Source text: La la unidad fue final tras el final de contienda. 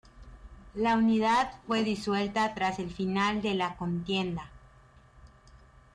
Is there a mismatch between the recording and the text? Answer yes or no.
yes